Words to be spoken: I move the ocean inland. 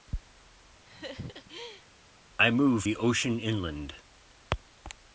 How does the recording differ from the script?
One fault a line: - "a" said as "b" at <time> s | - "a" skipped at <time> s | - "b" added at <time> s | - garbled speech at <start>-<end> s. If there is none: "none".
none